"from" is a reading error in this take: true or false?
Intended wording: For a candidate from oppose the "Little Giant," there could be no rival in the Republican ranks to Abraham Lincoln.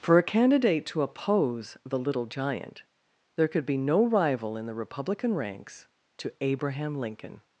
true